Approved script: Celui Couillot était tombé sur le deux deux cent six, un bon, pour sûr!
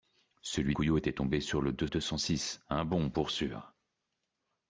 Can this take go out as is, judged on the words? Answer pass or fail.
pass